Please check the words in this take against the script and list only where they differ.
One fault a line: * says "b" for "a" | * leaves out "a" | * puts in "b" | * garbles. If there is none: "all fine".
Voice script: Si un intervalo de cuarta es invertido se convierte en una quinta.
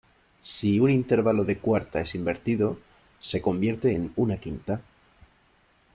all fine